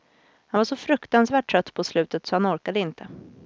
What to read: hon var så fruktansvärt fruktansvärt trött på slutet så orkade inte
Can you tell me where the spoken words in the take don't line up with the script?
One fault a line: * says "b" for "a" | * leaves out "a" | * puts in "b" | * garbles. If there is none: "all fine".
* says "han" for "hon"
* leaves out "fruktansvärt"
* puts in "han"